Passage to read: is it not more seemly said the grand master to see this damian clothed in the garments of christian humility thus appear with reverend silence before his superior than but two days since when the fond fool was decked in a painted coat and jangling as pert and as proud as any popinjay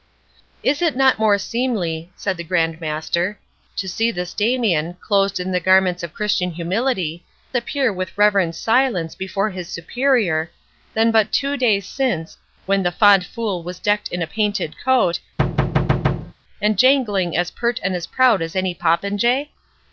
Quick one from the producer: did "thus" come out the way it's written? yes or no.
no